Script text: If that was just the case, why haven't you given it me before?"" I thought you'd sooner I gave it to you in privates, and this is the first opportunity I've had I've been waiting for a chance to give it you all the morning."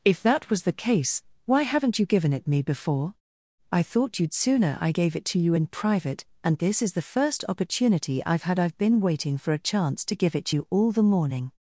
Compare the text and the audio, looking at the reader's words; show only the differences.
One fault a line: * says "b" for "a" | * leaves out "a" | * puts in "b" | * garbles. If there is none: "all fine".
* leaves out "just"
* says "private" for "privates"